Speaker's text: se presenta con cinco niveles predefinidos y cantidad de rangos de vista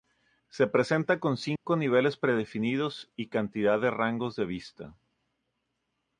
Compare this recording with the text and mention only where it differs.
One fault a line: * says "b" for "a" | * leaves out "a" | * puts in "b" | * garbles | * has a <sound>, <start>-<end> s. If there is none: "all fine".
* has a dropout, 1.6-1.7 s